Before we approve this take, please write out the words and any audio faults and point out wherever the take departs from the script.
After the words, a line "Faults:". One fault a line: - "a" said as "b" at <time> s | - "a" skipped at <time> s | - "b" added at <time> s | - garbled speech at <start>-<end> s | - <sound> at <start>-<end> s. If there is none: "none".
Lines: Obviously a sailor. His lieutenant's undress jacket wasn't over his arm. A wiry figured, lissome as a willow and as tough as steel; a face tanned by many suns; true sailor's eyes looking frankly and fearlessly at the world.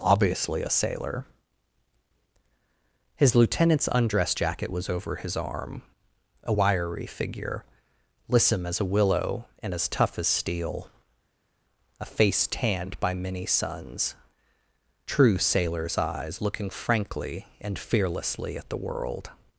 Obviously a sailor. His lieutenant's undress jacket was over his arm. A wiry figure, lissome as a willow and as tough as steel; a face tanned by many suns; true sailor's eyes looking frankly and fearlessly at the world.
Faults:
- "wasn't" said as "was" at 4.7 s
- "figured" said as "figure" at 7.1 s